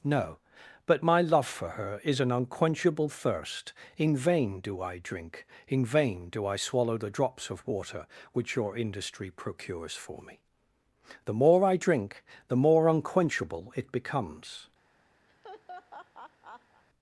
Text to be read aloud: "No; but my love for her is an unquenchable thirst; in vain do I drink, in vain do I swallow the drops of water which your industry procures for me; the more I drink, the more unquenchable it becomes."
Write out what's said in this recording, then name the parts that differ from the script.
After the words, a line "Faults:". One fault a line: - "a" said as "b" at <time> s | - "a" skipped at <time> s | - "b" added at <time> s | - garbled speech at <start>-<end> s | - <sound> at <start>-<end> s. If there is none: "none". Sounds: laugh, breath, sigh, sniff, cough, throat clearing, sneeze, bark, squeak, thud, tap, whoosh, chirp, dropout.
"No; but my love for her is an unquenchable thirst; in vain do I drink, in vain do I swallow the drops of water which your industry procures for me; the more I drink, the more unquenchable it becomes."
Faults:
- laugh at 15.3-16.8 s